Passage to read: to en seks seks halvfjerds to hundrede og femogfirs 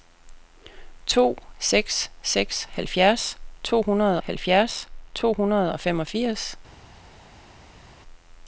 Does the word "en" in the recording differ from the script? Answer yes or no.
yes